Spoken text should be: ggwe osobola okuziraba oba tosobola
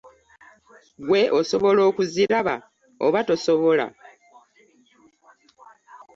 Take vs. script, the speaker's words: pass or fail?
pass